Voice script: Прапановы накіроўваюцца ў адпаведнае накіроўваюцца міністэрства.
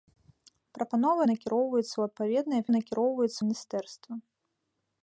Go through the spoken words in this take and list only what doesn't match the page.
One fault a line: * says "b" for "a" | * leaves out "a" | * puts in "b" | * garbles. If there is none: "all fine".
all fine